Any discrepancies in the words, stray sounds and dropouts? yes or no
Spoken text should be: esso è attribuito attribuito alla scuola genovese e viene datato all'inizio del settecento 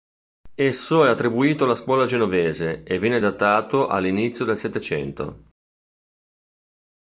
yes